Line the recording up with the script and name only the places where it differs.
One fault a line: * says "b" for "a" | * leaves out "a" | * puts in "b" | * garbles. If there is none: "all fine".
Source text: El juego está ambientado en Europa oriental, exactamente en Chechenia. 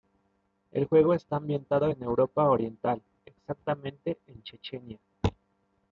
all fine